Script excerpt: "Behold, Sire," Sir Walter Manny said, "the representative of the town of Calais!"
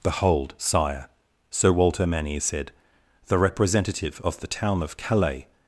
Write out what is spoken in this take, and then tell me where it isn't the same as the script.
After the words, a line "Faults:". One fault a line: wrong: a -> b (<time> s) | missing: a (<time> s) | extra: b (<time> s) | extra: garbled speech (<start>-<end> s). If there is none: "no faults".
"Behold, Sire," Sir Walter Manny said, "the representative of the town of Calais!"
Faults:
no faults